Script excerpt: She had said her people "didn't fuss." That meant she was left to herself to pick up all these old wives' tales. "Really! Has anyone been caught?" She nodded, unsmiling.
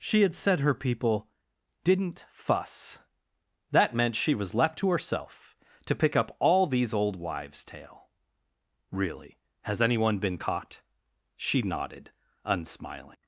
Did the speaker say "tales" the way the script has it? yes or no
no